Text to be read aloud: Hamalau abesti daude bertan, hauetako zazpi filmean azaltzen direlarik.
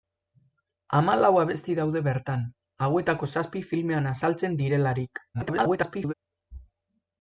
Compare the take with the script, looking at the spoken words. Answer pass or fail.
fail